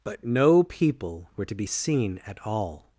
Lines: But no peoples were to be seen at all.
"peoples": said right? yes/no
no